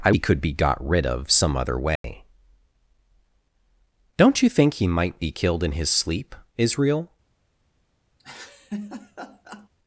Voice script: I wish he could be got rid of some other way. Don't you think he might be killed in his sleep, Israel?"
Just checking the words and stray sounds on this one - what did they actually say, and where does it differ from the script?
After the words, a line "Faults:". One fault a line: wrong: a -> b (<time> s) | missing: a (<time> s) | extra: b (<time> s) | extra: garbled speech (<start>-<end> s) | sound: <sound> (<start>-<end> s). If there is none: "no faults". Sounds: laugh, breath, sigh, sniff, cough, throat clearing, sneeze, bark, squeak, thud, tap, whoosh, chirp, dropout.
I he could be got rid of some other way. Don't you think he might be killed in his sleep, Israel?"
Faults:
missing: wish (0.1 s)
sound: dropout (2.0-2.0 s)
sound: laugh (8.2-9.7 s)